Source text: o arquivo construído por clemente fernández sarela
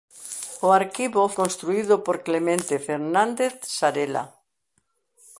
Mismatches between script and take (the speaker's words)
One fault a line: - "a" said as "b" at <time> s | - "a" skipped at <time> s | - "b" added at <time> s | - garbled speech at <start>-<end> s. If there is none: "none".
none